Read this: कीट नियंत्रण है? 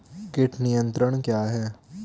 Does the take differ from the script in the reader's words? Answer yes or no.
yes